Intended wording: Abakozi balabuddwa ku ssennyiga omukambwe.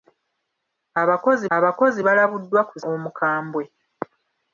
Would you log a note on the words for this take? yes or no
yes